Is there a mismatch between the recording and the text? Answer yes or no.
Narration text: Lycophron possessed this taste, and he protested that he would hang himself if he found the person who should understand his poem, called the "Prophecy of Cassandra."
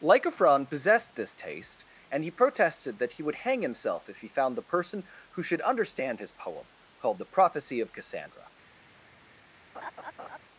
no